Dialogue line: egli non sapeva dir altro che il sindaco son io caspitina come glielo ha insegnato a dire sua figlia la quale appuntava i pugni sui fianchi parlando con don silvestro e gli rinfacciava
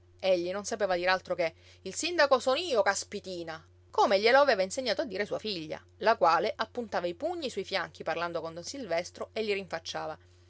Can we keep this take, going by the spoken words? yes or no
no